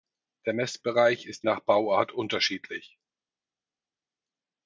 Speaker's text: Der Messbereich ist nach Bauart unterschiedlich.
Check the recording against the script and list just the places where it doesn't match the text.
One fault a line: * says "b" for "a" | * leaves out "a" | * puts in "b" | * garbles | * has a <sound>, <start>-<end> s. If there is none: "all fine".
all fine